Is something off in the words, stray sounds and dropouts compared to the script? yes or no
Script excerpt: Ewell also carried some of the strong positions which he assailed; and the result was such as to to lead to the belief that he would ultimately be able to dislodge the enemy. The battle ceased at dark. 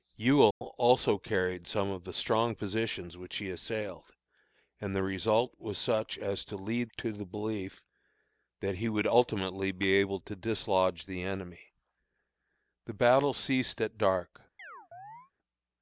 yes